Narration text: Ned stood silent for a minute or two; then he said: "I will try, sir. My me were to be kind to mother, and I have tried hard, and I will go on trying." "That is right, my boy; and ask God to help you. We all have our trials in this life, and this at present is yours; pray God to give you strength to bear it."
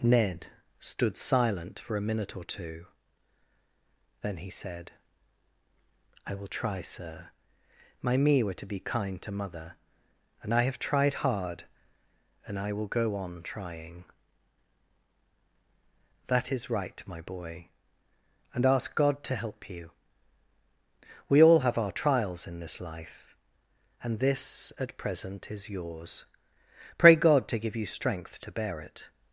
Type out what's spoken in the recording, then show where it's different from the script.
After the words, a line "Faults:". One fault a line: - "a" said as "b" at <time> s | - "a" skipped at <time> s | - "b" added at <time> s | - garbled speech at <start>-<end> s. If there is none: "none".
Ned stood silent for a minute or two; then he said: "I will try, sir. My me were to be kind to mother, and I have tried hard, and I will go on trying." "That is right, my boy; and ask God to help you. We all have our trials in this life, and this at present is yours; pray God to give you strength to bear it."
Faults:
none